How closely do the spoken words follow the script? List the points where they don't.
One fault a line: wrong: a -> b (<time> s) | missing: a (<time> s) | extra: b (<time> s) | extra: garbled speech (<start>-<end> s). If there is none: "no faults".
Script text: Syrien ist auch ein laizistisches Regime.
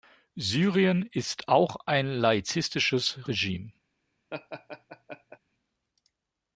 no faults